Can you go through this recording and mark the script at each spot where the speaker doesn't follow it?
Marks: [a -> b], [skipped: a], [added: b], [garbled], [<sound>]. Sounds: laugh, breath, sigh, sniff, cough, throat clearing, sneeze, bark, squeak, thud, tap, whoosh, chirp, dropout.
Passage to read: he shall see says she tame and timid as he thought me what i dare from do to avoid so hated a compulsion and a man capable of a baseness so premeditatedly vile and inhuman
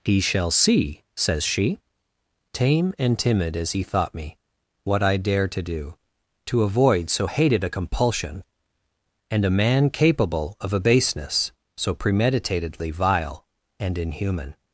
he shall see says she tame and timid as he thought me what i dare [from -> to] do to avoid so hated a compulsion and a man capable of a baseness so premeditatedly vile and inhuman